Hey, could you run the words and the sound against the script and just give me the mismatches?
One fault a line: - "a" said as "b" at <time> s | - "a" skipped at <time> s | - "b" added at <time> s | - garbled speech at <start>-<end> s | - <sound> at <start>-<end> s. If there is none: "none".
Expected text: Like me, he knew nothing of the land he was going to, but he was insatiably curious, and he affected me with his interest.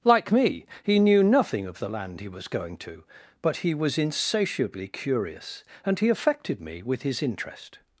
none